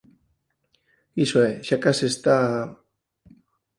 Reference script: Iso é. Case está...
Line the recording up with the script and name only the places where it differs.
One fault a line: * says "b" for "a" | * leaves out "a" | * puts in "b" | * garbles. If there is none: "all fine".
* puts in "Xa"